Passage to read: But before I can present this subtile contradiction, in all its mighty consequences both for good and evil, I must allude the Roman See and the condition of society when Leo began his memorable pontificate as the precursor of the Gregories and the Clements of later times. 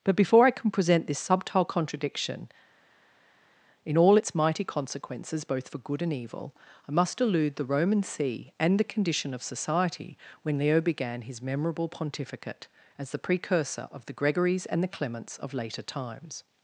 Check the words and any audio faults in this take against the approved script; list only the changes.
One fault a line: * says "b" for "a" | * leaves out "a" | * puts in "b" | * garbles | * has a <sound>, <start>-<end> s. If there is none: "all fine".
all fine